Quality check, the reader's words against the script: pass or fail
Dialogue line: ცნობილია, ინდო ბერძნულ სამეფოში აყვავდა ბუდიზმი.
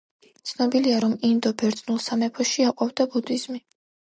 fail